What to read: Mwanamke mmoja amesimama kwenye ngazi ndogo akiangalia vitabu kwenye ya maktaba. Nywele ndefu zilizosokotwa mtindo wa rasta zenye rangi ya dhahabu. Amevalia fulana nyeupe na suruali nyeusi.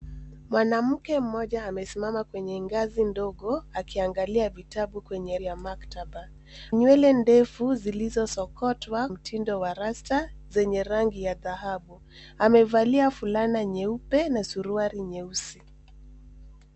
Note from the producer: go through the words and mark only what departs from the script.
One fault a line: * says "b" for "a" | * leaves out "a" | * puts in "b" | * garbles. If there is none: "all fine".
all fine